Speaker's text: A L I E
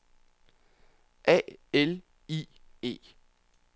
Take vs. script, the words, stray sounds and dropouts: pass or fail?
pass